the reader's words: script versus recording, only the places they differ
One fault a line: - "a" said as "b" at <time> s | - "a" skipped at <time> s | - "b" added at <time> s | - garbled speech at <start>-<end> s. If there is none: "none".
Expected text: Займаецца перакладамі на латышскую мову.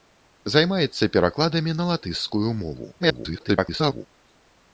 - garbled speech at 3.0-4.1 s